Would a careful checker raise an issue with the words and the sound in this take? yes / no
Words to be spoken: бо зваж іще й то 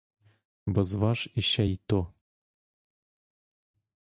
no